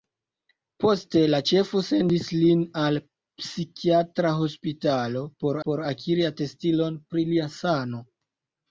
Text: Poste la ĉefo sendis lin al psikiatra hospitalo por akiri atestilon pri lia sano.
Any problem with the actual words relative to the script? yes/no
yes